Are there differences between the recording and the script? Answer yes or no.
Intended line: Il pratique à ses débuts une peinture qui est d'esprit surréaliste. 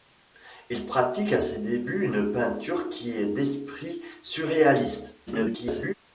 yes